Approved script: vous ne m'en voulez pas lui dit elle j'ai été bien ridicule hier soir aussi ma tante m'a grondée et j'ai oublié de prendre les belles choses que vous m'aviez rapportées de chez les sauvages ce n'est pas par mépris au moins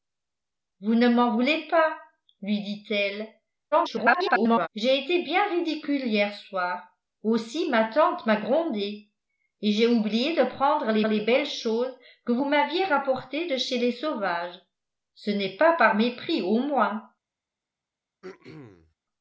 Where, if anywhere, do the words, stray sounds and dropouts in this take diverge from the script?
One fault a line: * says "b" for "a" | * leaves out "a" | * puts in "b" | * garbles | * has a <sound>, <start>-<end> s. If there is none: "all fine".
* garbles
* puts in "les"
* has a throat clearing, 18.2-18.9 s